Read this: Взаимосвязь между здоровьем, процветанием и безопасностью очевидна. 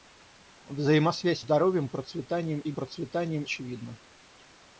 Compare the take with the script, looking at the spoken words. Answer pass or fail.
fail